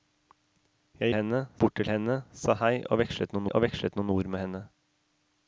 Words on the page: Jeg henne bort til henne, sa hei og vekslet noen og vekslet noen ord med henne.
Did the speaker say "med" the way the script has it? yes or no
yes